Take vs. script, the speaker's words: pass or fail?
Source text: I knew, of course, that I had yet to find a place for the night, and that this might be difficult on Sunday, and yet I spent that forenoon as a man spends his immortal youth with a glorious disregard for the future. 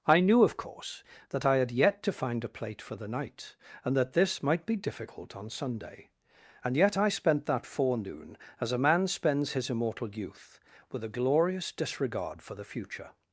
fail